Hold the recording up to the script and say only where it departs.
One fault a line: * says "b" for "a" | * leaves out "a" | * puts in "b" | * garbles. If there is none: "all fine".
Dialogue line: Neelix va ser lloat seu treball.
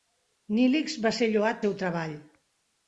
all fine